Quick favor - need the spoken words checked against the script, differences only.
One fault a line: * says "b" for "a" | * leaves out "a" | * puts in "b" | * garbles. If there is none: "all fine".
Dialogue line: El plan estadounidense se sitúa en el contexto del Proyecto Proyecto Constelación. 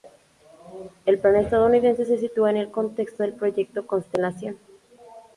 * leaves out "Proyecto"